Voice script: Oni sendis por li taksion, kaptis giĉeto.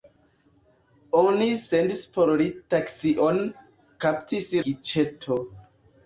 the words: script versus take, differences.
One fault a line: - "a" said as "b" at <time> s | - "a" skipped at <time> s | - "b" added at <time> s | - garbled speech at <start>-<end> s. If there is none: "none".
none